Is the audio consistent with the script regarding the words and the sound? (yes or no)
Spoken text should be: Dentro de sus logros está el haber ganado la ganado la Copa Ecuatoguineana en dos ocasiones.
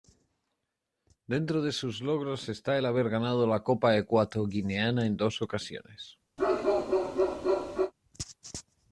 no